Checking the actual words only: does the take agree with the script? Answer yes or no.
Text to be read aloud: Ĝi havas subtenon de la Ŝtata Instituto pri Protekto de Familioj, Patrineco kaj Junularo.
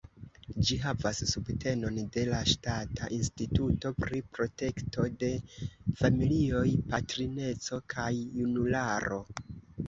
yes